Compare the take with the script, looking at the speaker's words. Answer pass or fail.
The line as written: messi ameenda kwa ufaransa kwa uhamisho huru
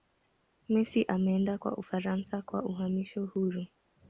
pass